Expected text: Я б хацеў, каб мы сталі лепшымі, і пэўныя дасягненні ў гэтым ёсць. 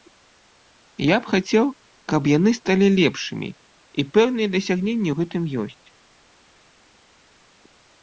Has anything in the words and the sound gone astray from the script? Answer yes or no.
yes